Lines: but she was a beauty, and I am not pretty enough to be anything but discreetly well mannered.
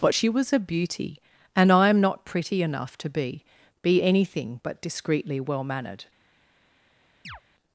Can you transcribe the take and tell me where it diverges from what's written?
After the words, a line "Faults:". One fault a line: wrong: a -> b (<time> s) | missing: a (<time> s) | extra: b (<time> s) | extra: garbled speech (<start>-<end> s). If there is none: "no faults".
but she was a beauty, and I am not pretty enough to be be anything but discreetly well mannered.
Faults:
extra: be (3.8 s)